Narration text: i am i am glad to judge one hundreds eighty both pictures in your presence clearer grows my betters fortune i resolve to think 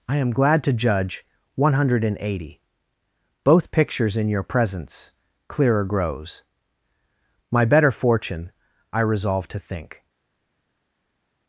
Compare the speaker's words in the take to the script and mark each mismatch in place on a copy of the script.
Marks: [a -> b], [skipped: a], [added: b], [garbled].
i am [skipped: i am] glad to judge one [hundreds -> hundred] eighty both pictures in your presence clearer grows my [betters -> better] fortune i resolve to think